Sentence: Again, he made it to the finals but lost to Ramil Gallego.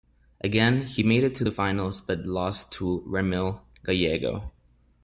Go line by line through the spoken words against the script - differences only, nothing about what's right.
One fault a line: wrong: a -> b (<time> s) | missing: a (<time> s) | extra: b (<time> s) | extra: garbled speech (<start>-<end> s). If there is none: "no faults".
no faults